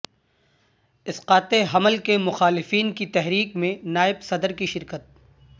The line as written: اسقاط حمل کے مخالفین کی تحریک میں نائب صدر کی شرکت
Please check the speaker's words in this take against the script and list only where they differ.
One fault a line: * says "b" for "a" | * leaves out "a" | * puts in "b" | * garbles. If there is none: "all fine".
all fine